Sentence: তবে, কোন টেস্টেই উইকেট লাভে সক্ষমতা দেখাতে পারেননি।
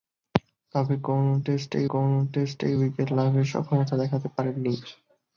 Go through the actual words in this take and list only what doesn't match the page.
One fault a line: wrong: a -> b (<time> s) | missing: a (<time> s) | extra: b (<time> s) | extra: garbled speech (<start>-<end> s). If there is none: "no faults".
extra: কোন টেস্টেই (1.9 s)